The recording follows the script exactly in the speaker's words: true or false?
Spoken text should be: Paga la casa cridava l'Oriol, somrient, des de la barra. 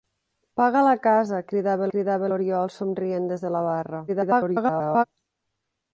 false